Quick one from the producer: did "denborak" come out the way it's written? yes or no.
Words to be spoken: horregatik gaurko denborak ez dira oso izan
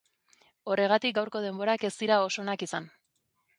yes